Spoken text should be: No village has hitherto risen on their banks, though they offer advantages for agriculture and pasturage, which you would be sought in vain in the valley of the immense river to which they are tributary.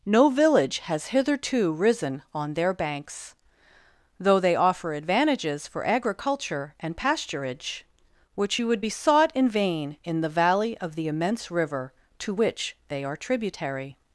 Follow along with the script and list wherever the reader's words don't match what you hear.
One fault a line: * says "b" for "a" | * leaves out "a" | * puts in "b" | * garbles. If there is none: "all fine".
all fine